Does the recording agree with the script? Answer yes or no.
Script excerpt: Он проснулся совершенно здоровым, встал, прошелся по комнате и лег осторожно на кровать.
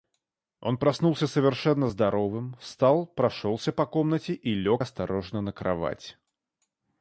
yes